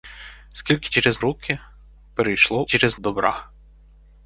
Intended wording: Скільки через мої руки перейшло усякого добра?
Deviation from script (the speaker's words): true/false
true